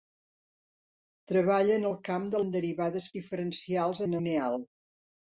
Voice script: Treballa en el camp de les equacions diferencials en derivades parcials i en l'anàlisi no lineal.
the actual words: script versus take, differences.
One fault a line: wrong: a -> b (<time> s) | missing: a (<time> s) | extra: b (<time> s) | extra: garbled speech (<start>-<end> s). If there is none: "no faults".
missing: les equacions diferencials (2.4 s)
wrong: parcials -> diferencials (3.2 s)
missing: l'anàlisi no (4.2 s)